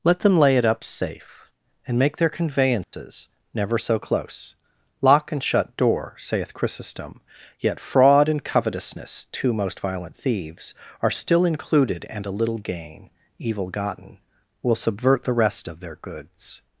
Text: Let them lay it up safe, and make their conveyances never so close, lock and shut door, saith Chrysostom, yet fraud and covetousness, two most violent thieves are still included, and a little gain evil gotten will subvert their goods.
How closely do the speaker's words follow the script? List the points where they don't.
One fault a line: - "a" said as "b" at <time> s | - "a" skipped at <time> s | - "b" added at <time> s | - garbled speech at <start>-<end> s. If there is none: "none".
- "the rest of" added at 15.2 s